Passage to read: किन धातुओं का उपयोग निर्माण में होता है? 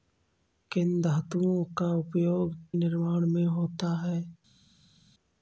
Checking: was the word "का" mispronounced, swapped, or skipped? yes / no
no